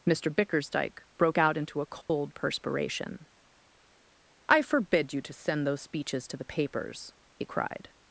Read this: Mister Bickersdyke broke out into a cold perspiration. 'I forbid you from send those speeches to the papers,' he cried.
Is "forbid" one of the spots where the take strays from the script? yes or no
no